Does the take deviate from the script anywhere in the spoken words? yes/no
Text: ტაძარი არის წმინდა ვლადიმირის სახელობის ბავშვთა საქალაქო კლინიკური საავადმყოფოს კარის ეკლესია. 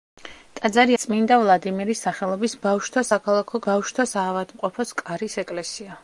yes